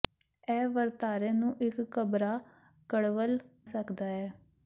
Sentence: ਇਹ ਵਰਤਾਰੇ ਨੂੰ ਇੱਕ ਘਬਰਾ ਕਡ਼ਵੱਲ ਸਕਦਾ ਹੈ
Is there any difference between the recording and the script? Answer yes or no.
no